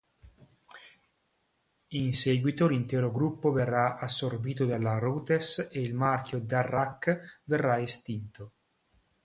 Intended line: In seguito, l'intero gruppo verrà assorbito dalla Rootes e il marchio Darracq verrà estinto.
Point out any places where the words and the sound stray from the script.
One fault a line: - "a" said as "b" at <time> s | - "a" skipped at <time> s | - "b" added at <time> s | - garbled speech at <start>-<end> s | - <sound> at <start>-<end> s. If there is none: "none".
none